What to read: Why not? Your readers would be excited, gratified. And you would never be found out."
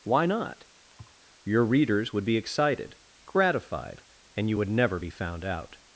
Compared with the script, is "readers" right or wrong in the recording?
right